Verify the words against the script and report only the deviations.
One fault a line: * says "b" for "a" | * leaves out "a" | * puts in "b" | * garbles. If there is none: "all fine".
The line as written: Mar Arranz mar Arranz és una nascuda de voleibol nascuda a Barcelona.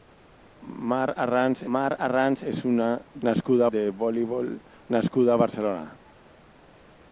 all fine